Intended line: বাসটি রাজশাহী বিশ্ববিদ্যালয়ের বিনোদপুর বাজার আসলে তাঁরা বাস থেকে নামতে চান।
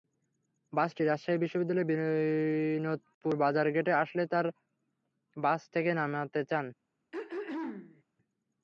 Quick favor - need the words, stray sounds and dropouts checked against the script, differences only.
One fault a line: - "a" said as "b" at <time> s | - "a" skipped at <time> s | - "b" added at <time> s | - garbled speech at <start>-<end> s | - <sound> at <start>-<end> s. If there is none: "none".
- "গেটে" added at 3.8 s
- throat clearing at 7.1-8.0 s